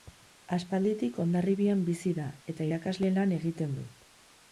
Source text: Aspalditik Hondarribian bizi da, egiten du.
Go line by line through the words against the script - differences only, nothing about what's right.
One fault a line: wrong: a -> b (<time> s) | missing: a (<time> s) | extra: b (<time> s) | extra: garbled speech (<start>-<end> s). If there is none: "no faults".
extra: eta irakasle lan (2.5 s)